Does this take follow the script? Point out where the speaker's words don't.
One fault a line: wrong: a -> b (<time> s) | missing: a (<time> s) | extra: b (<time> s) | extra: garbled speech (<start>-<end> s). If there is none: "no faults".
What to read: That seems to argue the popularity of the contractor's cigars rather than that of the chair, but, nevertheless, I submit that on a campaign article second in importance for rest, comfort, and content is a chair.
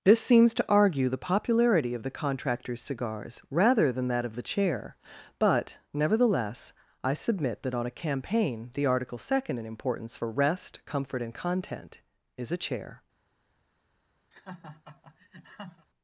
wrong: That -> This (0.0 s)
extra: the (8.7 s)